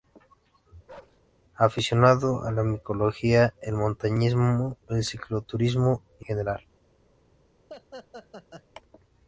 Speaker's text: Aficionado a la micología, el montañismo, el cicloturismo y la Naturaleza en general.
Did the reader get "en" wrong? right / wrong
wrong